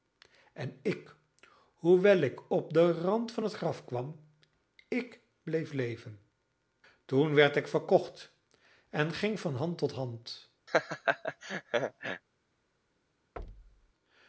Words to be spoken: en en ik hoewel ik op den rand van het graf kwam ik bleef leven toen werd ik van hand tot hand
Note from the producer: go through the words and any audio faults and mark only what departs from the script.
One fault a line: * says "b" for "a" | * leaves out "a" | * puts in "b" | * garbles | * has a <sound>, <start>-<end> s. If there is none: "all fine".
* leaves out "en"
* puts in "verkocht en ging"
* has a laugh, 10.7-12.2 s
* has a thud, 13.4-13.9 s